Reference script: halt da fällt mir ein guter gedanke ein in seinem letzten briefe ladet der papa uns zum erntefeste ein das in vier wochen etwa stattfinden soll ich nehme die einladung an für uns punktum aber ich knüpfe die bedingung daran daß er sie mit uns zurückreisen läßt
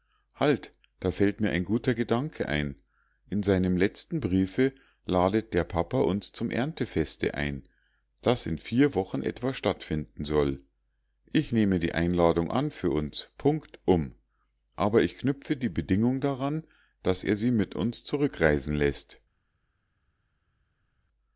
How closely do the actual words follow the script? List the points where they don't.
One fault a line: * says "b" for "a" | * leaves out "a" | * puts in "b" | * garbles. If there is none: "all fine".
all fine